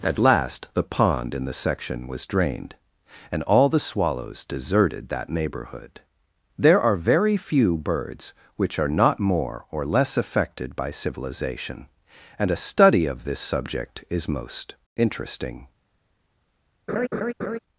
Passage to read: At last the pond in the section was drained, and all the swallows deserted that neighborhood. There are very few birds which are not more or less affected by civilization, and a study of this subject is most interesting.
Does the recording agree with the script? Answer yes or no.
yes